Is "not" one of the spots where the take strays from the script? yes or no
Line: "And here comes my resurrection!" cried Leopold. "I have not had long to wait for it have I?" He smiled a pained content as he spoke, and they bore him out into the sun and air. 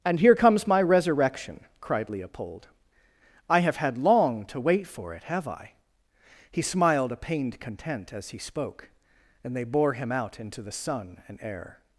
yes